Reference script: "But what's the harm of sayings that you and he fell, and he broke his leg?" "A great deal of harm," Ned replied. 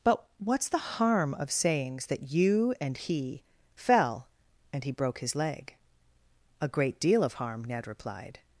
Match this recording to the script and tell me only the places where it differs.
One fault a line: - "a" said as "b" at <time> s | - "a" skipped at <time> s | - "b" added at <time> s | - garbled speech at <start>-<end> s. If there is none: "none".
none